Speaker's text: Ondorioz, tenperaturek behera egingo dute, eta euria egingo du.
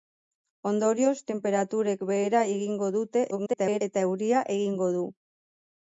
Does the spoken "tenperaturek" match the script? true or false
true